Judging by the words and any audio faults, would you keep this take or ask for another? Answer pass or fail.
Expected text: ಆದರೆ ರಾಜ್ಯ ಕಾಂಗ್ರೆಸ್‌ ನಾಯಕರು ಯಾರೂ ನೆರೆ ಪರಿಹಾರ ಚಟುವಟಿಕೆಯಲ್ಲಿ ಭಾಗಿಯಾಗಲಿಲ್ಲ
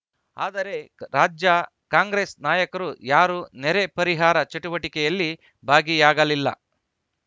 pass